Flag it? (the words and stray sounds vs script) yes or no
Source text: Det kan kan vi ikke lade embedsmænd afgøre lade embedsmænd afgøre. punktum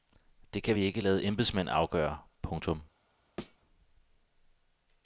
yes